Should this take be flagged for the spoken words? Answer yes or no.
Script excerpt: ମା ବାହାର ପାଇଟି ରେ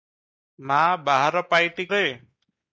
no